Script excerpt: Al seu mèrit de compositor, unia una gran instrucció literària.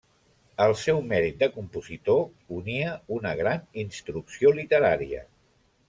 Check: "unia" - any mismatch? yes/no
no